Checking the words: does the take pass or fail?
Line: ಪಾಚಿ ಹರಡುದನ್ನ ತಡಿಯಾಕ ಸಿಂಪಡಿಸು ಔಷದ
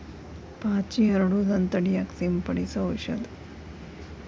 pass